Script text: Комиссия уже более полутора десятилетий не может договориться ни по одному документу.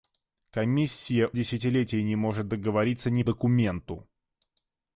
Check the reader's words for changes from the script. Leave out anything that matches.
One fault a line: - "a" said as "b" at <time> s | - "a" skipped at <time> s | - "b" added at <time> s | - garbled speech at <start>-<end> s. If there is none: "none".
- "уже более полутора" skipped at 1.3 s
- "по одному" skipped at 3.2 s